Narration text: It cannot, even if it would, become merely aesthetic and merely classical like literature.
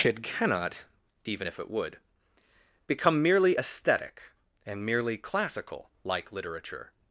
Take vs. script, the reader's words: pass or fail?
pass